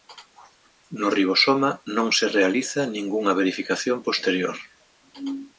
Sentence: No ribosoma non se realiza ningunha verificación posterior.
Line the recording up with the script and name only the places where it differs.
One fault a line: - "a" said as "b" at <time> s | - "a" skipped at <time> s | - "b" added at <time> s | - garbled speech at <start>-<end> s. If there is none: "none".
none